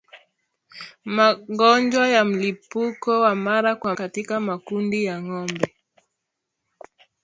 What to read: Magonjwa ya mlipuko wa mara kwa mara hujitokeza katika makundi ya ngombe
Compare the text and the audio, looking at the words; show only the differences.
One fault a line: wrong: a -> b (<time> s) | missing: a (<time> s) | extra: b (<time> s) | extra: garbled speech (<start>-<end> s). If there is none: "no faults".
missing: mara hujitokeza (4.0 s)